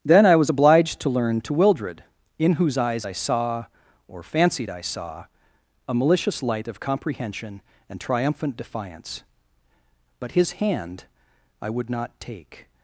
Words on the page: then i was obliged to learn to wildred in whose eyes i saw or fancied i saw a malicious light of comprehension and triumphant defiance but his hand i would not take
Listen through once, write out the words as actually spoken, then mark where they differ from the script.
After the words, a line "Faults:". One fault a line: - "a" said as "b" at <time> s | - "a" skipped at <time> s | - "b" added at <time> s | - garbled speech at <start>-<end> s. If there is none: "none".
then i was obliged to learn to wildred in whose eyes i saw or fancied i saw a malicious light of comprehension and triumphant defiance but his hand i would not take
Faults:
none